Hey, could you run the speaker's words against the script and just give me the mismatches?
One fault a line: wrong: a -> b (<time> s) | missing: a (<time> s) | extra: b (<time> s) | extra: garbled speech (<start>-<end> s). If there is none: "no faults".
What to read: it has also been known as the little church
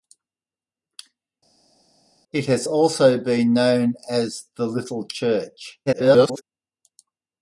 extra: garbled speech (5.9-6.4 s)